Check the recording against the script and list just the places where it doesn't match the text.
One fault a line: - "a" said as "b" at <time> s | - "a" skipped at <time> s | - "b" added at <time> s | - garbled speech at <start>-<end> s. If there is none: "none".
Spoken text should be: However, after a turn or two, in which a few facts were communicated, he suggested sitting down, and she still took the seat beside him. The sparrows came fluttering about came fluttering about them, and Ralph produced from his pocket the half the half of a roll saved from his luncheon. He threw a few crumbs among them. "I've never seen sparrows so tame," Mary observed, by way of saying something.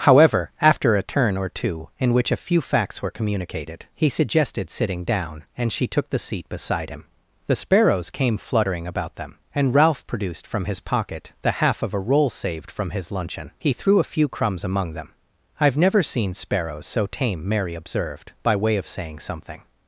- "still" skipped at 5.8 s
- "came fluttering about" skipped at 9.2 s
- "the half" skipped at 11.8 s